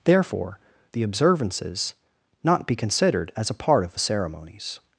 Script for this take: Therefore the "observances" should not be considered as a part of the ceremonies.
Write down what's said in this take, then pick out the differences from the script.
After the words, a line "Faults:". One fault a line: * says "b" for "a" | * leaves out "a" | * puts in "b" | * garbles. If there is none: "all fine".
Therefore the "observances" not be considered as a part of the ceremonies.
Faults:
* leaves out "should"